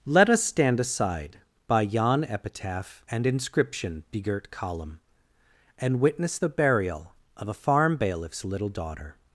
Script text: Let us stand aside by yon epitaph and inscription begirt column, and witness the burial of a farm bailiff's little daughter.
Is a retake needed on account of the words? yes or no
no